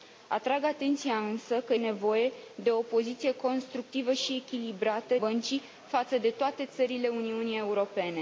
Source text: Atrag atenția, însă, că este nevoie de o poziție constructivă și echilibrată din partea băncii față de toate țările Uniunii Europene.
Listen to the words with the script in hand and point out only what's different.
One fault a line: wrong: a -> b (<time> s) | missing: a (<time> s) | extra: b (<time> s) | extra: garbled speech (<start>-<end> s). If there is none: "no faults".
missing: este (1.8 s)
missing: din partea (5.1 s)